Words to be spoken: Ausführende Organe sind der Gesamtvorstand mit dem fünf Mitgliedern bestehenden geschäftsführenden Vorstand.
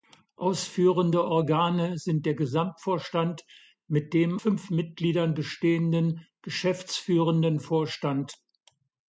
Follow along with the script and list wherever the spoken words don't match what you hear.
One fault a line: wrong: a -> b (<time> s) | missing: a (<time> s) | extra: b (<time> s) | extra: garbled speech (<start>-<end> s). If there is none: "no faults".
no faults